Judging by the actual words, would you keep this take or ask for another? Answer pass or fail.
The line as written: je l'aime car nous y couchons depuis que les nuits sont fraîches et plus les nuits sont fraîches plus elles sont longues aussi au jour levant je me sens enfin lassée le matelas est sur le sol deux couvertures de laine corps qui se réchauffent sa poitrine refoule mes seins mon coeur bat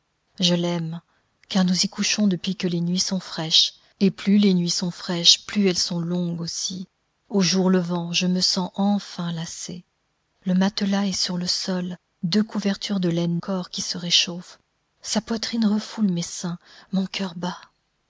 pass